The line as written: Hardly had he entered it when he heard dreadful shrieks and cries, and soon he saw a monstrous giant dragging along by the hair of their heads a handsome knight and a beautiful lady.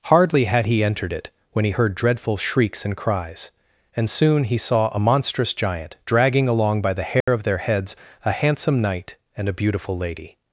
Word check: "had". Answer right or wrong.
right